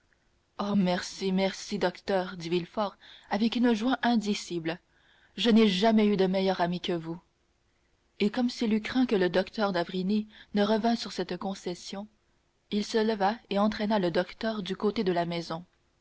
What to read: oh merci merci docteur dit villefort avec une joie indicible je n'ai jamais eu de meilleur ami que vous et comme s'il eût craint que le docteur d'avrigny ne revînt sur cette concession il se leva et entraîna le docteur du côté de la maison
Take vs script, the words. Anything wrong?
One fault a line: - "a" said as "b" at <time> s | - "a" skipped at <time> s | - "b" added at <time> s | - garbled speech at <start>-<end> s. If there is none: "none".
none